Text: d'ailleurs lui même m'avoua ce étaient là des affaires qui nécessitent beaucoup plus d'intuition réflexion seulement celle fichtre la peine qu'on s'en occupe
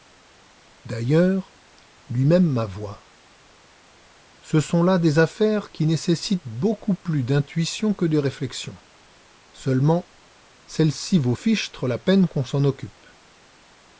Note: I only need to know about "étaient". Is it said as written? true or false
false